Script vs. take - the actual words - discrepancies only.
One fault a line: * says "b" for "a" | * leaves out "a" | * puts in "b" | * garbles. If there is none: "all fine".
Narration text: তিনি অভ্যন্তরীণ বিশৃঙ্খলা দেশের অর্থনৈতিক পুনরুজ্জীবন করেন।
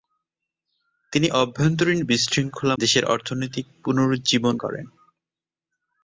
all fine